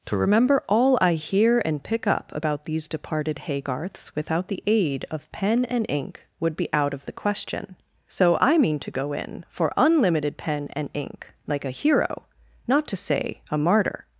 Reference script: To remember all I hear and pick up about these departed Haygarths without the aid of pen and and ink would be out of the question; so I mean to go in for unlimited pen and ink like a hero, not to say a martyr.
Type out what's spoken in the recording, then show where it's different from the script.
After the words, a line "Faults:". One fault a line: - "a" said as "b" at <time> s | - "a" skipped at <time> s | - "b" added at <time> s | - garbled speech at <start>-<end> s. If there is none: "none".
To remember all I hear and pick up about these departed Haygarths without the aid of pen and ink would be out of the question; so I mean to go in for unlimited pen and ink like a hero, not to say a martyr.
Faults:
- "and" skipped at 5.8 s